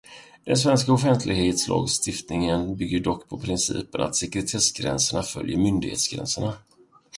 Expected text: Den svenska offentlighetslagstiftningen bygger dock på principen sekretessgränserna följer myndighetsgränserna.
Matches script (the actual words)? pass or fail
fail